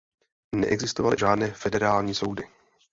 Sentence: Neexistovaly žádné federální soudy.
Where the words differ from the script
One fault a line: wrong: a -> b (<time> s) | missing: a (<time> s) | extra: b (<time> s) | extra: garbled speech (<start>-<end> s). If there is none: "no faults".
no faults